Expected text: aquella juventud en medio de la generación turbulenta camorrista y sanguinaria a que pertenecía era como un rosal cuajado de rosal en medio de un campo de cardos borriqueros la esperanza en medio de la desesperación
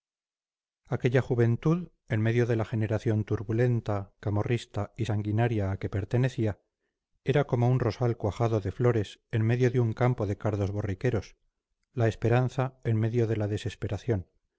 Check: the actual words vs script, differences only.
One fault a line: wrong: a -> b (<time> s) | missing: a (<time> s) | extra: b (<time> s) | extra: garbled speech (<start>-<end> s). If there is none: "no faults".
wrong: rosal -> flores (8.7 s)